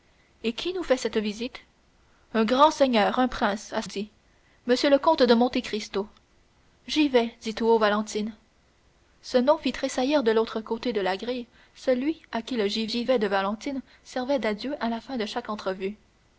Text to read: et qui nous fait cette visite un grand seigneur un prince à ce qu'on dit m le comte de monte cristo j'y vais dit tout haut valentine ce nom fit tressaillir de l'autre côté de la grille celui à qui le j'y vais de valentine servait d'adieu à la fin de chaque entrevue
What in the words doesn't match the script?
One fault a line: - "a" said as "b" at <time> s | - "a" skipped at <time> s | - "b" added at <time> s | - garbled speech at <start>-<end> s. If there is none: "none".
- "ce qu'on" skipped at 3.8 s
- "j'y" added at 12.8 s